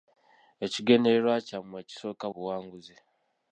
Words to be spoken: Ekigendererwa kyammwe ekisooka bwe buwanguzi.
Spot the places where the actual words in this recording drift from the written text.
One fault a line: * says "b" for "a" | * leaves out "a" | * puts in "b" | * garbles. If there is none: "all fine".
* leaves out "bwe"